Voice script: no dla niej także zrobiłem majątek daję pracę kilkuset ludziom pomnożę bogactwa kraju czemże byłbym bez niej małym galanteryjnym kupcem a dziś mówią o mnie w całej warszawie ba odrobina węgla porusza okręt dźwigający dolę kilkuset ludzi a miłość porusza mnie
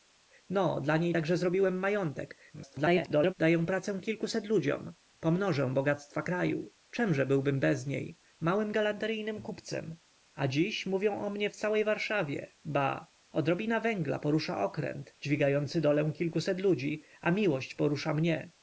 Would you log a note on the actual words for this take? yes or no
yes